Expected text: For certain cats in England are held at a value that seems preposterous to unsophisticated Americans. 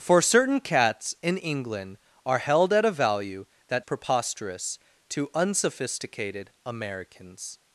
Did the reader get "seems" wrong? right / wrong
wrong